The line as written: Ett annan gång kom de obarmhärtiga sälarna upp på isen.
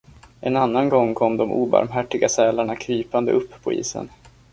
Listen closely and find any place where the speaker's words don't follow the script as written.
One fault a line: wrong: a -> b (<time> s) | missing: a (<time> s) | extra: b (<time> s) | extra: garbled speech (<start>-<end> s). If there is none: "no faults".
wrong: Ett -> En (0.4 s)
extra: krypande (2.8 s)